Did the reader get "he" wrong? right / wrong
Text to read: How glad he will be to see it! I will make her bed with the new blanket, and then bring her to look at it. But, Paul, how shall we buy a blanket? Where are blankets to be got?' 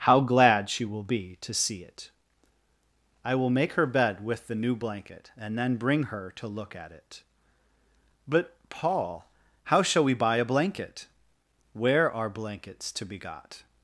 wrong